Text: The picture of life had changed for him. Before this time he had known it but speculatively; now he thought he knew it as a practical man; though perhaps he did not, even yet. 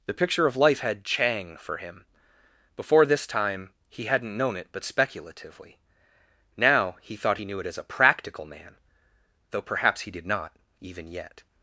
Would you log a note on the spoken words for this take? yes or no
yes